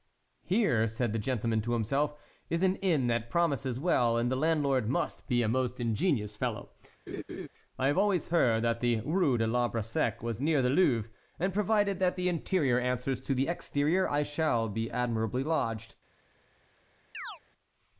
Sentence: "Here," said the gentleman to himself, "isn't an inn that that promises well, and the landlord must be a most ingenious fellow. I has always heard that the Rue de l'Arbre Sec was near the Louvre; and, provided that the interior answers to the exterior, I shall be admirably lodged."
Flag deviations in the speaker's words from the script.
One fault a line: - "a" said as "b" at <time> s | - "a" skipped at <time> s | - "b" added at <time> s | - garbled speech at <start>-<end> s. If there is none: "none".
- "isn't" said as "is" at 2.5 s
- "that" skipped at 3.3 s
- "has" said as "have" at 7.9 s